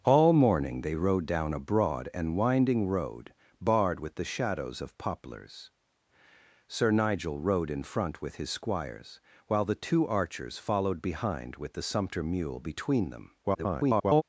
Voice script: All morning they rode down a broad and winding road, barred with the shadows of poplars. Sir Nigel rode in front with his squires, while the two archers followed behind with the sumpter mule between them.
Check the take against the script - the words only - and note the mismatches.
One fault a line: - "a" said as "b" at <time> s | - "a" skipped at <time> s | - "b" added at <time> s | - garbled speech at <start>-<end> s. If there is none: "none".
- garbled speech at 13.4-14.2 s